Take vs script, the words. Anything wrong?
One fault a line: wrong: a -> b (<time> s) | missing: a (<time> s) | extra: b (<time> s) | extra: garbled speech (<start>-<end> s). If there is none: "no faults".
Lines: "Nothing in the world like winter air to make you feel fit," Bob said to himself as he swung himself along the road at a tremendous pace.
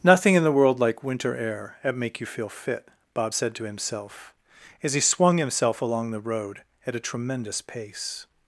wrong: to -> at (1.8 s)